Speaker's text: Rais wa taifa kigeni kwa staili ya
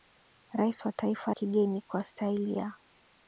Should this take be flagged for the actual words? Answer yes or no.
no